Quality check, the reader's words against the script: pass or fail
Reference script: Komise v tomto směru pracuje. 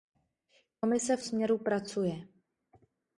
fail